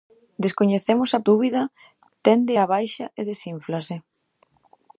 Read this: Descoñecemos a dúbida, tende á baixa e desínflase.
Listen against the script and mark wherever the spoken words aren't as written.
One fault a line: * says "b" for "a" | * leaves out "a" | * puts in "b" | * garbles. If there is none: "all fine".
all fine